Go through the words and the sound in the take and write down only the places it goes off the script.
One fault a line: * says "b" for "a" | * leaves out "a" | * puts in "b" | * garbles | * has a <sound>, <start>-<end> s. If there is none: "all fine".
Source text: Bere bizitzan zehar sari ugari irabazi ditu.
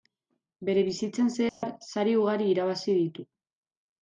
* has a dropout, 1.5-1.6 s